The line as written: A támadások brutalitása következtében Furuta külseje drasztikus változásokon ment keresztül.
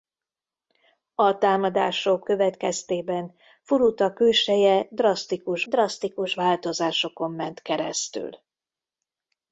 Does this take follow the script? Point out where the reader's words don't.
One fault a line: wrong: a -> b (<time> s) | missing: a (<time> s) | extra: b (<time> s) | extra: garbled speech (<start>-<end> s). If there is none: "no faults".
missing: brutalitása (2.3 s)
extra: drasztikus (5.6 s)